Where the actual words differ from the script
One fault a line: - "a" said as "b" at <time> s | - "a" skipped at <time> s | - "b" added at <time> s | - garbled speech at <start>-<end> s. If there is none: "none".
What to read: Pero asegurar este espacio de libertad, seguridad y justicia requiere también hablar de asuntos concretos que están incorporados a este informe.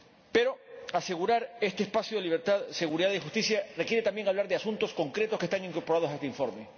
none